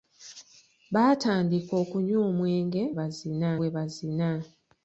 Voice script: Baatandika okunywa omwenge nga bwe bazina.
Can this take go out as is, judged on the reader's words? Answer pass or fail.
fail